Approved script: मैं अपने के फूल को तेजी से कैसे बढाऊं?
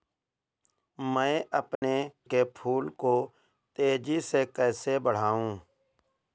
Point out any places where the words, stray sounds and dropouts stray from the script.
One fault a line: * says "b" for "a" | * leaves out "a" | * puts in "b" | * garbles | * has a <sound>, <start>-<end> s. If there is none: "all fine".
* has a dropout, 1.8-1.8 s